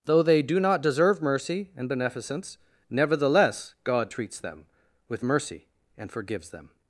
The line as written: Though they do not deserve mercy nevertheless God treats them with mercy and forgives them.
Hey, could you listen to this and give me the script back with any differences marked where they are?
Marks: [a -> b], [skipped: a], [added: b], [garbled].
Though they do not deserve mercy [added: and beneficence] nevertheless God treats them with mercy and forgives them.